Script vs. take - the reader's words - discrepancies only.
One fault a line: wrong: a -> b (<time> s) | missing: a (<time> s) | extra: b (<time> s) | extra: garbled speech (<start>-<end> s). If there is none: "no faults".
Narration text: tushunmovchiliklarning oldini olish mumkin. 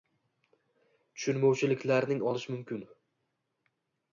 missing: oldini (2.2 s)